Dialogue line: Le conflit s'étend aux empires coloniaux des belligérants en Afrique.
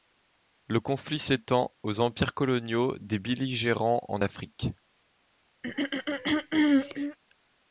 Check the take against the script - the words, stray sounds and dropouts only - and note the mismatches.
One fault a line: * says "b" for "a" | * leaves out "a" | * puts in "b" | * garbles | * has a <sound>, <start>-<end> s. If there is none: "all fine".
* has a throat clearing, 5.6-7.2 s